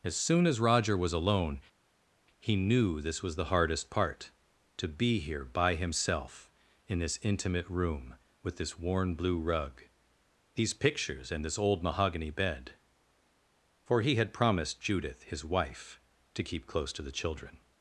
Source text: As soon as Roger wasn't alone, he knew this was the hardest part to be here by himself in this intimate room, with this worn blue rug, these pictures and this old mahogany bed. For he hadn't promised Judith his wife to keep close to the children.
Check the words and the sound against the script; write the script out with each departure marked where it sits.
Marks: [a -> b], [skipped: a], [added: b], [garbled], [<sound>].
As soon as Roger [wasn't -> was] alone, he knew this was the hardest part to be here by himself in this intimate room, with this worn blue rug, these pictures and this old mahogany bed. For he [hadn't -> had] promised Judith his wife to keep close to the children.